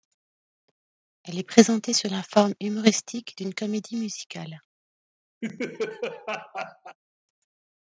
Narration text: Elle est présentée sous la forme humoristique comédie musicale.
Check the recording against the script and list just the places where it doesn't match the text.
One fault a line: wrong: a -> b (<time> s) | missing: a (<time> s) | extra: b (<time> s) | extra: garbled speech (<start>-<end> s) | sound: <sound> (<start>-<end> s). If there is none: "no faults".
extra: d'une (3.4 s)
sound: laugh (5.4-7.0 s)